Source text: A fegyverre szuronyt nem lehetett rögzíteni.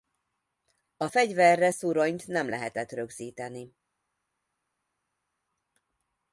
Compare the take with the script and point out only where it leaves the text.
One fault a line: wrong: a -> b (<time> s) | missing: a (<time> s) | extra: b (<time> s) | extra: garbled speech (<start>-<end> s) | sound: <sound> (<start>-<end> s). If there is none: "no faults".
no faults